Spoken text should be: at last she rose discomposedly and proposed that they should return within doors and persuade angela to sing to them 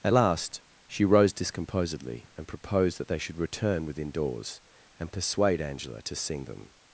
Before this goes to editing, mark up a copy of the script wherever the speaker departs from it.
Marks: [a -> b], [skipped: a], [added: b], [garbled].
at last she rose discomposedly and proposed that they should return within doors and persuade angela to sing [skipped: to] them